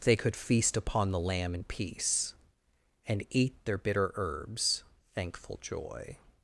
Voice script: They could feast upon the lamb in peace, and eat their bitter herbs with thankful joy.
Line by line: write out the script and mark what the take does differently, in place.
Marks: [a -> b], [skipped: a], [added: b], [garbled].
They could feast upon the lamb in peace, and eat their bitter herbs [skipped: with] thankful joy.